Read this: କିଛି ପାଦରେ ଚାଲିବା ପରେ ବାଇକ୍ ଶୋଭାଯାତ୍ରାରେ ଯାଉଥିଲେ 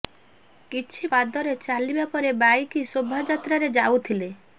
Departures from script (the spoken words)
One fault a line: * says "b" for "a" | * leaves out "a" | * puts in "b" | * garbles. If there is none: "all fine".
all fine